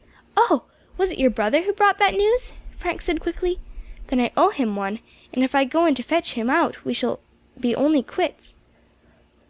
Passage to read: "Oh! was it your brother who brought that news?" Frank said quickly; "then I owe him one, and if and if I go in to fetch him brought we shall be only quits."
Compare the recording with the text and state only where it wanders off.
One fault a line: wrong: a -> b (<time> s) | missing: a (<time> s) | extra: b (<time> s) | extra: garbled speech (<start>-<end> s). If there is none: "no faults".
missing: and if (5.6 s)
wrong: brought -> out (6.5 s)